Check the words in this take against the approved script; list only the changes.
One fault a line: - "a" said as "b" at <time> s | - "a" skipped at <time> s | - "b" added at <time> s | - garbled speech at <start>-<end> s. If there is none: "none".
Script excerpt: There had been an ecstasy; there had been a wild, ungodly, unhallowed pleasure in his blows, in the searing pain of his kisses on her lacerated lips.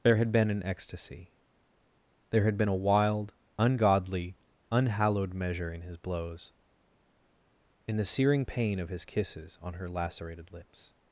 - "pleasure" said as "measure" at 5.3 s